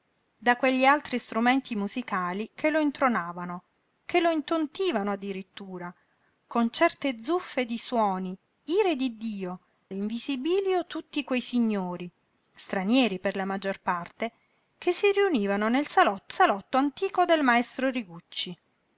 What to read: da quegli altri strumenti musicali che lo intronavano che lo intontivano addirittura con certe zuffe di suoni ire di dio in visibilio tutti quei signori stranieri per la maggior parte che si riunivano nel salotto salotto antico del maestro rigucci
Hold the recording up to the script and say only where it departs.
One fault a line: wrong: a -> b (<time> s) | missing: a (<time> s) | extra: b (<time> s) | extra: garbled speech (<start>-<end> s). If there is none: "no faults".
no faults